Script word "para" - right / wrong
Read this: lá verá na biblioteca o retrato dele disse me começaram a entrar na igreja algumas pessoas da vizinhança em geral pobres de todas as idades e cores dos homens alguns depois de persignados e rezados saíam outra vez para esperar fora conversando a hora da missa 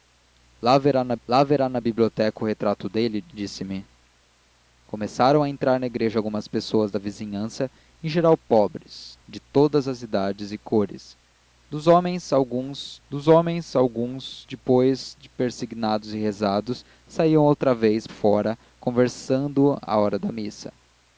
wrong